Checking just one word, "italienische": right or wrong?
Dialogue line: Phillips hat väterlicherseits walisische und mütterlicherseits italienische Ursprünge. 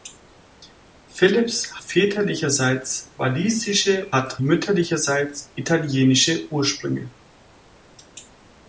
right